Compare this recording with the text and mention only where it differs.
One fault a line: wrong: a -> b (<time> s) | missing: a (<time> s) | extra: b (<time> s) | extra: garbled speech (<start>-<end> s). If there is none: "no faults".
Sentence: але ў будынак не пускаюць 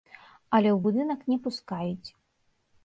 no faults